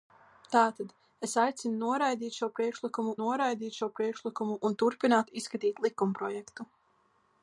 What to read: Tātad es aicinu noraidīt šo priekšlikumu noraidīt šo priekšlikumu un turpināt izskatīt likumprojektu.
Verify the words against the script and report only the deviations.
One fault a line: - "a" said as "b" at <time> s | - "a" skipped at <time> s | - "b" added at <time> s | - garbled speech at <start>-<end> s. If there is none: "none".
none